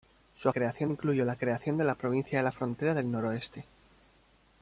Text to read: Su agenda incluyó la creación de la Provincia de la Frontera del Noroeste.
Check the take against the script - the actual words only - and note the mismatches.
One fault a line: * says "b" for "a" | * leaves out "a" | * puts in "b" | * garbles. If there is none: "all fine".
* says "creación" for "agenda"